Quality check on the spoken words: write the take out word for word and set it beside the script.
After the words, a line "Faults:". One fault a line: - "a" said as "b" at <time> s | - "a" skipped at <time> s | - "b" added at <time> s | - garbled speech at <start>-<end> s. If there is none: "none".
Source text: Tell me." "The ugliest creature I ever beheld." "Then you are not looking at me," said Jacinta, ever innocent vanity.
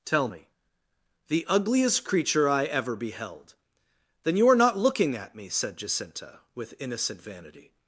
Tell me." "The ugliest creature I ever beheld." "Then you are not looking at me," said Jacinta, with innocent vanity.
Faults:
- "ever" said as "with" at 6.5 s